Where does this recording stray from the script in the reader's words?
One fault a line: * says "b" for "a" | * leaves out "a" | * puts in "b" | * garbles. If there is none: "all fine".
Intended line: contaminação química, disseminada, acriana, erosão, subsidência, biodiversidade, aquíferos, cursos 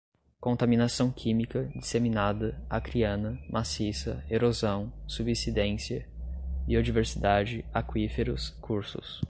* puts in "maciça"